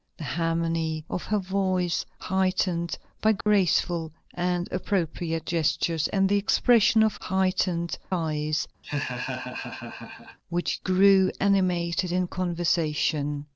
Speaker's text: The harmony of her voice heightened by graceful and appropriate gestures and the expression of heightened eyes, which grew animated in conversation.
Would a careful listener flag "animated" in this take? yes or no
no